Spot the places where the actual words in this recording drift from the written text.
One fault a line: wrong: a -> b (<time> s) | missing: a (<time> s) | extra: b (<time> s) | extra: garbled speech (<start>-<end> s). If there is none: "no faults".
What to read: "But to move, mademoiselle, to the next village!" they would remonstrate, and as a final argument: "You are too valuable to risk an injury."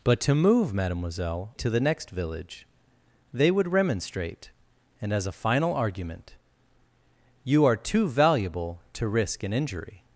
no faults